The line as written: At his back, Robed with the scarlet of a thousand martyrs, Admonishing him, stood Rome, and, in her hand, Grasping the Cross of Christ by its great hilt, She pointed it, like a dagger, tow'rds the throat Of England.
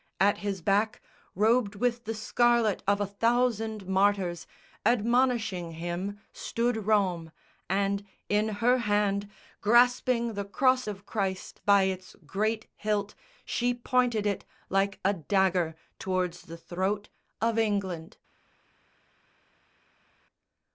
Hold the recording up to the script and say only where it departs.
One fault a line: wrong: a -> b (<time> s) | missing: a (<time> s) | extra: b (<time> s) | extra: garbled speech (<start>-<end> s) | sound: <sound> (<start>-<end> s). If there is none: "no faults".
no faults